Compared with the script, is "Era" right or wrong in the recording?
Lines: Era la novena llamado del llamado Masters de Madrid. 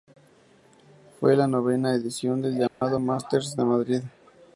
wrong